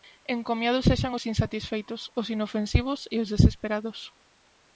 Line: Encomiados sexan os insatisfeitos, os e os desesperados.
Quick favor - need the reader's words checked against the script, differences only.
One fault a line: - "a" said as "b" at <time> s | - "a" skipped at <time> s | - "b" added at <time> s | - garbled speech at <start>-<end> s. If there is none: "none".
- "inofensivos" added at 2.3 s